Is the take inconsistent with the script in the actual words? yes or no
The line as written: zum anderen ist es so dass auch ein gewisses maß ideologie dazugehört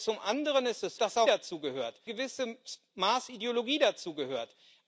yes